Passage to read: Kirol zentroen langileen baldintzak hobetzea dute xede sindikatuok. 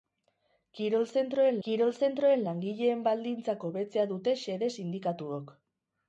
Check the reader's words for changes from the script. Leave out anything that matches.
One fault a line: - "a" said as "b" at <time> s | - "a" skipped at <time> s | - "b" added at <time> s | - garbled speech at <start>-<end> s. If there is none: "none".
- "kirol zentroen" added at 1.6 s